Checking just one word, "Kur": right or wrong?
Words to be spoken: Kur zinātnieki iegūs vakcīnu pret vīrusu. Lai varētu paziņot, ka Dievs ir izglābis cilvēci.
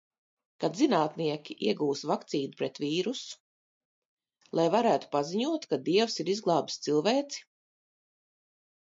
wrong